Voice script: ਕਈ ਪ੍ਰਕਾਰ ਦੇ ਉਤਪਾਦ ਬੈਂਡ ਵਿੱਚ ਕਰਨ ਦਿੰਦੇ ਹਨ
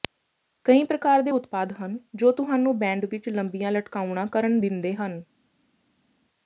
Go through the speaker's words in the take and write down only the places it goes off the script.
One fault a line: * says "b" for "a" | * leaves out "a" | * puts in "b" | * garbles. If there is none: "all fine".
* puts in "ਹਨ ਜੋ ਤੁਹਾਨੂੰ"
* puts in "ਲੰਬੀਆਂ ਲਟਕਾਉਣਾ"